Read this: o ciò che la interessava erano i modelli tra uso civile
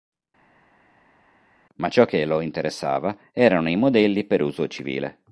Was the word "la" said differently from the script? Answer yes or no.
yes